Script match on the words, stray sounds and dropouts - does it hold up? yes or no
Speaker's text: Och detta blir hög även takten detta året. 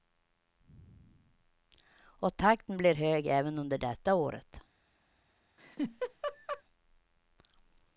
no